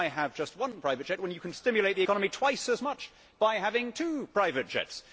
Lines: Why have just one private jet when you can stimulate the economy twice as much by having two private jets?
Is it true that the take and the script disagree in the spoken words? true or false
false